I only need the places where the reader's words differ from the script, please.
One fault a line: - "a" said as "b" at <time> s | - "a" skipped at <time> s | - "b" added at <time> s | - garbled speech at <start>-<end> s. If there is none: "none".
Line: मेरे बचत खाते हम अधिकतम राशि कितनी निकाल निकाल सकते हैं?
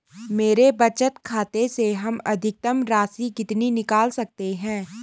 - "से" added at 1.7 s
- "निकाल" skipped at 4.1 s